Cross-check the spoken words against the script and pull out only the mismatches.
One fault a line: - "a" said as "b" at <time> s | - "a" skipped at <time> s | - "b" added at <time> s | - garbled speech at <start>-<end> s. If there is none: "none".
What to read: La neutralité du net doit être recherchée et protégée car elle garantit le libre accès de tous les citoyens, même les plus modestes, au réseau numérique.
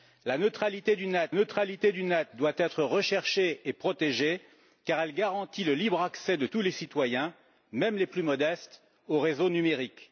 - "neutralité du net" added at 1.3 s